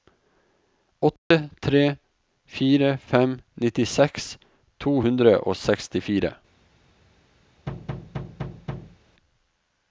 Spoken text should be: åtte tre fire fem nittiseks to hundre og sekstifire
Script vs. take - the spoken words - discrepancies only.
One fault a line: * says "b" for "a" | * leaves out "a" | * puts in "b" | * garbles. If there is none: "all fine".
all fine